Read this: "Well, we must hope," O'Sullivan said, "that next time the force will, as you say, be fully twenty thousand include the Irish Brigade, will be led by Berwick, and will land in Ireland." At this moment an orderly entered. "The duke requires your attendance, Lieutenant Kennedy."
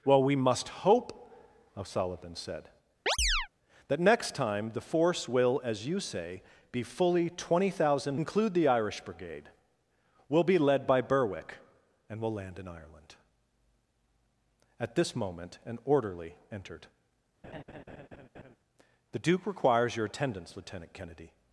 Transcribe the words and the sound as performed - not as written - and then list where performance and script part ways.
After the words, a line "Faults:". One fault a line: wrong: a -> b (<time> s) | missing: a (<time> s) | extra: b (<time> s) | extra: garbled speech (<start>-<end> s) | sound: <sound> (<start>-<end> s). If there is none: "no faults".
"Well, we must hope," O'Sullivan said, "that next time the force will, as you say, be fully twenty thousand include the Irish Brigade, will be led by Berwick, and will land in Ireland." At this moment an orderly entered. "The duke requires your attendance, Lieutenant Kennedy."
Faults:
sound: chirp (3.1-3.5 s)
sound: laugh (17.4-18.6 s)